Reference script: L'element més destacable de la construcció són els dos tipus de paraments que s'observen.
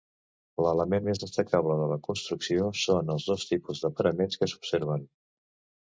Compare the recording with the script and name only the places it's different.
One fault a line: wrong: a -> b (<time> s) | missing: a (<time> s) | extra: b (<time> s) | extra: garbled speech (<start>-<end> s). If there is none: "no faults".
no faults